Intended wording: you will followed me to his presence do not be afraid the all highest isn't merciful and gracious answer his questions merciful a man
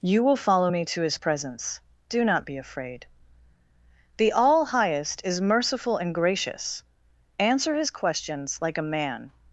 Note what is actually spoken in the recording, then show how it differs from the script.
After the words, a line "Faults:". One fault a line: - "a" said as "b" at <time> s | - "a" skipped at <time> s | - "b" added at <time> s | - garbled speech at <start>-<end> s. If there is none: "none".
you will follow me to his presence do not be afraid the all highest is merciful and gracious answer his questions like a man
Faults:
- "followed" said as "follow" at 0.3 s
- "isn't" said as "is" at 5.2 s
- "merciful" said as "like" at 8.6 s